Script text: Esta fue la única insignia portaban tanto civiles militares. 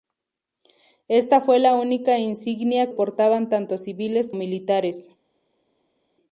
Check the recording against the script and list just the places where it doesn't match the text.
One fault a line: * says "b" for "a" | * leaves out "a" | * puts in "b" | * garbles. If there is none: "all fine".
all fine